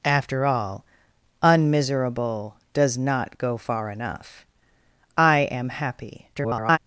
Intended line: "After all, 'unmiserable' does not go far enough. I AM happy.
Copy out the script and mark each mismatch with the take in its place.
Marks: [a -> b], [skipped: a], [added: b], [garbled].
"After all, 'unmiserable' does not go far enough. I AM happy. [garbled]